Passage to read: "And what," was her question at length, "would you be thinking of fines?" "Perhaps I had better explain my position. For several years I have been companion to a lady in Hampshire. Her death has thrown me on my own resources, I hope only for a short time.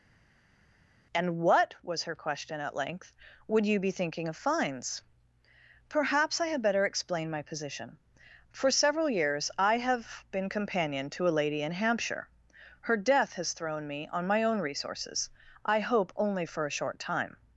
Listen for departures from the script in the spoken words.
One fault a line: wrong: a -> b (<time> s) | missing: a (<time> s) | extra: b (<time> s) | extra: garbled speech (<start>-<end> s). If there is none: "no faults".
no faults